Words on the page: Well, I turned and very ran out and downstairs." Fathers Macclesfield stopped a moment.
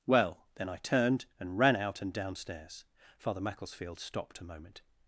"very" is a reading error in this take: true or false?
true